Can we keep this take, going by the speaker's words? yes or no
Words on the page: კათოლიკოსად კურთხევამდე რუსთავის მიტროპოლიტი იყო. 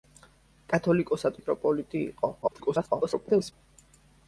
no